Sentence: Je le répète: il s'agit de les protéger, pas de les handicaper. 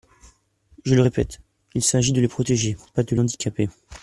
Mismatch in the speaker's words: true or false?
true